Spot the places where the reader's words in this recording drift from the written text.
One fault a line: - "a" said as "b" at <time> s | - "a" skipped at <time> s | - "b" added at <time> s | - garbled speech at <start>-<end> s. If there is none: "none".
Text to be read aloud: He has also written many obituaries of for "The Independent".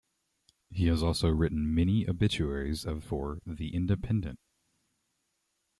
none